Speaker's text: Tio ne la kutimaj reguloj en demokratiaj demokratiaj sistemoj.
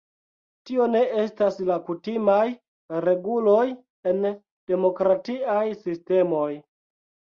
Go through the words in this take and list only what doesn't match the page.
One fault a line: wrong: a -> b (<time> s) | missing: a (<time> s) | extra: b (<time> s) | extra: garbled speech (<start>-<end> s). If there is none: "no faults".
extra: estas (1.2 s)
missing: demokratiaj (5.7 s)